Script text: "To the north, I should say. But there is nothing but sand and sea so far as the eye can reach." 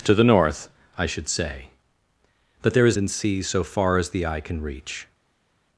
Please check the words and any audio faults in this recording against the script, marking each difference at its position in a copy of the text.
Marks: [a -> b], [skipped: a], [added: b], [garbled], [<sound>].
"To the north, I should say. But there is [skipped: nothing but sand] and sea so far as the eye can reach."